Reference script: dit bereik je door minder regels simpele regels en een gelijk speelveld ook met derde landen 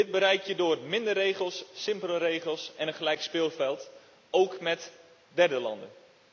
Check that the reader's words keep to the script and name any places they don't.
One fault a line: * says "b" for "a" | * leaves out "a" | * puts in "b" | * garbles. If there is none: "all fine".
all fine